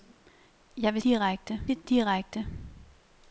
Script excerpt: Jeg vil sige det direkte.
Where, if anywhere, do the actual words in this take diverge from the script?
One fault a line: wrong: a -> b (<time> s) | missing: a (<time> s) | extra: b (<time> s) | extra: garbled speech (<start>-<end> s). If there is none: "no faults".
wrong: sige -> direkte (1.0 s)